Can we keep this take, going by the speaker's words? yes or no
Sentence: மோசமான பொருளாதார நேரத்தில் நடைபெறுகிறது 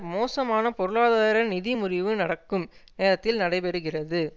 no